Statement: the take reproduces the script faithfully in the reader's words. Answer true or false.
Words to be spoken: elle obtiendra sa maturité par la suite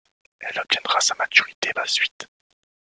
false